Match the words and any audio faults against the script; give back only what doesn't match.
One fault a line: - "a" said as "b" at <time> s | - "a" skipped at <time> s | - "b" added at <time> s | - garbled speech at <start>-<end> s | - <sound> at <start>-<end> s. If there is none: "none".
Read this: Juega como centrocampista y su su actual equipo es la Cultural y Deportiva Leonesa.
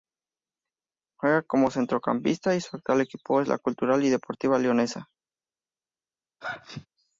- "su" skipped at 2.8 s
- sneeze at 6.4-6.9 s